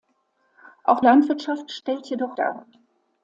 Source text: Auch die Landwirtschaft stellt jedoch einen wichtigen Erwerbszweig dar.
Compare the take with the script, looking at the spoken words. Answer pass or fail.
fail